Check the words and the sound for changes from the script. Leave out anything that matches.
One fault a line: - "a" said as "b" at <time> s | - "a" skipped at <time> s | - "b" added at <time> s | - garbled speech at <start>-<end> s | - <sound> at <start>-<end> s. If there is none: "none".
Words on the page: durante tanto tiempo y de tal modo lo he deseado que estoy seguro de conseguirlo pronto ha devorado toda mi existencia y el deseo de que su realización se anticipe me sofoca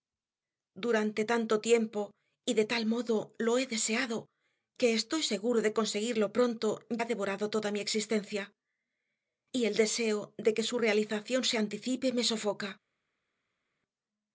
none